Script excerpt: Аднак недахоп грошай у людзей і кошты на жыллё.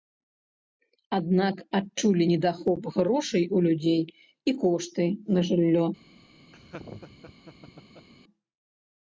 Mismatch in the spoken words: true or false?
true